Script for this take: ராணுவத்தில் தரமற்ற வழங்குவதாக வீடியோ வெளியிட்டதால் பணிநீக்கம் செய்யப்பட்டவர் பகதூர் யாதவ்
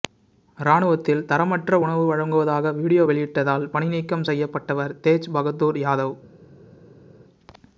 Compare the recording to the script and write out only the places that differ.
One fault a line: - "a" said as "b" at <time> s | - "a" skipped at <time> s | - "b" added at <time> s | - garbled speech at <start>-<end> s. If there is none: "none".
- "உணவு" added at 1.8 s
- "தேஜ்" added at 5.0 s